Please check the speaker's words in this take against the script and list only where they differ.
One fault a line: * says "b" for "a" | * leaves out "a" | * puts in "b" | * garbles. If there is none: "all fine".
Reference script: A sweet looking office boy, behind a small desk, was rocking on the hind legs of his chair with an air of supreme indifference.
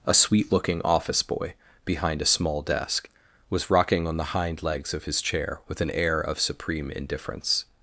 all fine